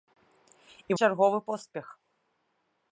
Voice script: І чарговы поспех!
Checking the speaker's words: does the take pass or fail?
pass